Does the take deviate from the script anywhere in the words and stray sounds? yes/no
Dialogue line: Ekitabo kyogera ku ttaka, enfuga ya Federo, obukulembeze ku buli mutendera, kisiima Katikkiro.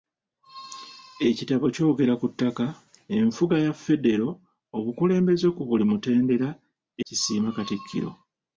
no